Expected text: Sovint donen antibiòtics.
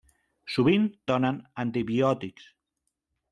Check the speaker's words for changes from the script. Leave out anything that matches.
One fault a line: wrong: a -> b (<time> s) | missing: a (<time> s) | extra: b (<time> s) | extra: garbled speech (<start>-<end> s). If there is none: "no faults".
no faults